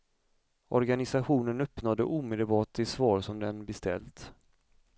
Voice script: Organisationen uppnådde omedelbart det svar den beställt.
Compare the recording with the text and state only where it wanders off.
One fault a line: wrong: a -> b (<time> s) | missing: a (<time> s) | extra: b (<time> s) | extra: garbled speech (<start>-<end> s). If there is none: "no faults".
extra: som (3.2 s)